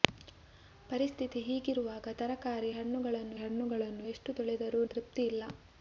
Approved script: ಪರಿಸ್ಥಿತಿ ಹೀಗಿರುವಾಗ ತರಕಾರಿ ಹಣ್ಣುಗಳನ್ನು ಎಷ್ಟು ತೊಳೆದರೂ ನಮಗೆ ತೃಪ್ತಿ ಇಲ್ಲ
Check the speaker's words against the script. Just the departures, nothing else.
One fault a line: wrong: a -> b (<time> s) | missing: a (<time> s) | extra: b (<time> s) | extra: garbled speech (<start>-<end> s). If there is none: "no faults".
extra: ಹಣ್ಣುಗಳನ್ನು (3.3 s)
missing: ನಮಗೆ (4.8 s)